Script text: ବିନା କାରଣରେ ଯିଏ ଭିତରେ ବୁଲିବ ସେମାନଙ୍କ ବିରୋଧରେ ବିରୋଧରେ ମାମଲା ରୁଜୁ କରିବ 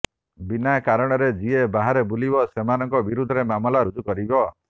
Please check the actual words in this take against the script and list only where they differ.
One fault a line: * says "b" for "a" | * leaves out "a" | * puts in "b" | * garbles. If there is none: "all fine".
* says "ବାହାରେ" for "ଭିତରେ"
* leaves out "ବିରୋଧରେ"